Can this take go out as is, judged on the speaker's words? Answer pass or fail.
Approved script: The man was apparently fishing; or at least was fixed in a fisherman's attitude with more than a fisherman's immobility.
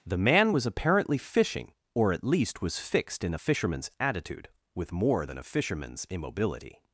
pass